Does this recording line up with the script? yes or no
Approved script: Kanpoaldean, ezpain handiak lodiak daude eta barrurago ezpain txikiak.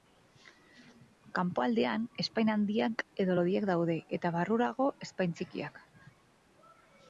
no